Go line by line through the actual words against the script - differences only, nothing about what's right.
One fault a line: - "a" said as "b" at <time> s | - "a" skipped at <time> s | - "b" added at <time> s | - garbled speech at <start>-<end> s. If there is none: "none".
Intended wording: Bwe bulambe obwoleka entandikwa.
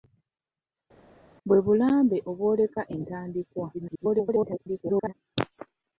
- garbled speech at 3.7-5.1 s